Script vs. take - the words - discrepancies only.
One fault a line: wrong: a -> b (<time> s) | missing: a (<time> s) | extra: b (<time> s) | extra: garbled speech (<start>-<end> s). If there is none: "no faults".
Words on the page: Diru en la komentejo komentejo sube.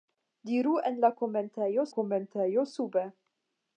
no faults